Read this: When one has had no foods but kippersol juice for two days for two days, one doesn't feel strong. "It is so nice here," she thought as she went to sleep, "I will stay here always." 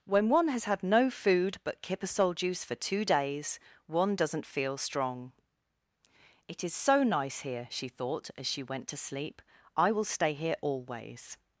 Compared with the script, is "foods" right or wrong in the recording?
wrong